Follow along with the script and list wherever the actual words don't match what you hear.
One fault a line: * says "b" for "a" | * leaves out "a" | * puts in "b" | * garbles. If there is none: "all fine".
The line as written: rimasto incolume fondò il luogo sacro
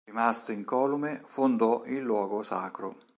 all fine